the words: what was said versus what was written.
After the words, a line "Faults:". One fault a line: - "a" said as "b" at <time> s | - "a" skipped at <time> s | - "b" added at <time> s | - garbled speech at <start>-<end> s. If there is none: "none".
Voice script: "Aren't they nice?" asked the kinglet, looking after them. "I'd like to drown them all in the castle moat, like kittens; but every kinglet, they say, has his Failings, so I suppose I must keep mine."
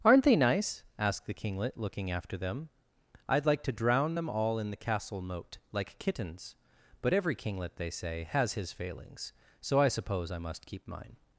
"Aren't they nice?" asked the kinglet, looking after them. "I'd like to drown them all in the castle moat, like kittens; but every kinglet, they say, has his Failings, so I suppose I must keep mine."
Faults:
none